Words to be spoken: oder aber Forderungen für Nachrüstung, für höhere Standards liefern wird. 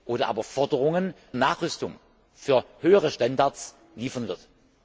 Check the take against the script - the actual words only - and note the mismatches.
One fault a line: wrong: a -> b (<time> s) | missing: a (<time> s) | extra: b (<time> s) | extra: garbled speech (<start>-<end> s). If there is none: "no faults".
missing: für (1.1 s)